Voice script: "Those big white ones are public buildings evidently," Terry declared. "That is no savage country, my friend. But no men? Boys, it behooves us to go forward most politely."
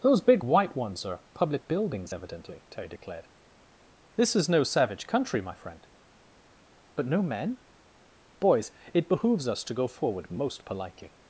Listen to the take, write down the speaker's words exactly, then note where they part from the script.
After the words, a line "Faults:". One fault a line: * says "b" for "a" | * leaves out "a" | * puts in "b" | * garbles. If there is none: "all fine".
"Those big white ones are public buildings evidently," Terry declared. "This is no savage country, my friend. But no men? Boys, it behooves us to go forward most politely."
Faults:
* says "This" for "That"